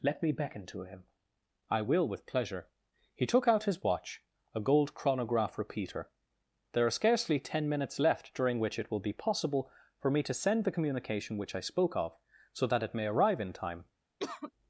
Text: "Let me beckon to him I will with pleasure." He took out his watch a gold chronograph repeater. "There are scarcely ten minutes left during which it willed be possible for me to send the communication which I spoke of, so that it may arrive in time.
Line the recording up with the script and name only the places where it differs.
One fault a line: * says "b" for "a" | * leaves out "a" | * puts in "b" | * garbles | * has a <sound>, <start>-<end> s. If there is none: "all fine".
* says "will" for "willed"
* has a cough, 14.2-14.5 s